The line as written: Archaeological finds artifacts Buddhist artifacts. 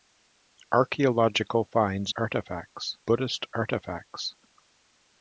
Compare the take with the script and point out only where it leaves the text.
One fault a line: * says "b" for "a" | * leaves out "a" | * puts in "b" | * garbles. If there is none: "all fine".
all fine